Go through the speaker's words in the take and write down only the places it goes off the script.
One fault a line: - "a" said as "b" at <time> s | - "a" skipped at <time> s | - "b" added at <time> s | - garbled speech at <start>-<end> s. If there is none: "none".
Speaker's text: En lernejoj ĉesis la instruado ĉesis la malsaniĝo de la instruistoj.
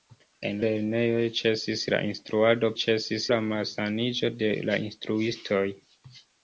none